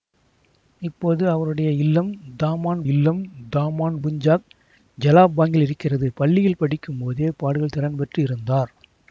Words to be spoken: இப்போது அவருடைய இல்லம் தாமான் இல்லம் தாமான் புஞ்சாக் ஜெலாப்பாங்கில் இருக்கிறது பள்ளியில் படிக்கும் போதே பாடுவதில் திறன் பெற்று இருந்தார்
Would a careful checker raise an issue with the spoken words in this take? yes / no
no